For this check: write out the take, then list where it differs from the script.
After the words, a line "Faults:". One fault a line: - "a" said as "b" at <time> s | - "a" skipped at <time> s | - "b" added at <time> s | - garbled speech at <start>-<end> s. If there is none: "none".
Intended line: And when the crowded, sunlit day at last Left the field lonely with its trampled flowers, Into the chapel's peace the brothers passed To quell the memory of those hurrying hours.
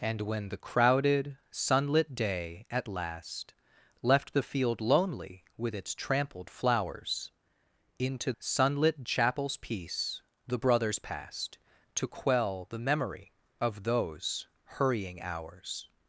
And when the crowded, sunlit day at last Left the field lonely with its trampled flowers, Into sunlit chapel's peace the brothers passed To quell the memory of those hurrying hours.
Faults:
- "the" said as "sunlit" at 8.4 s